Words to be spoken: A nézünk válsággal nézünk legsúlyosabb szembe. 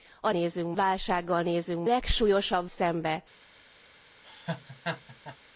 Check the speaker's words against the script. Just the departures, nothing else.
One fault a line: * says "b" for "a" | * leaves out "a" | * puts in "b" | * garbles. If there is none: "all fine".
all fine